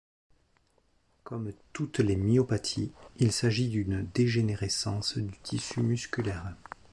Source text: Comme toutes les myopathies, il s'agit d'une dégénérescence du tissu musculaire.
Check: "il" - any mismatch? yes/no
no